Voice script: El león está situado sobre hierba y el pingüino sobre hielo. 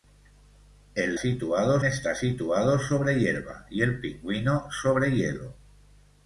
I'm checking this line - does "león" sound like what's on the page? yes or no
no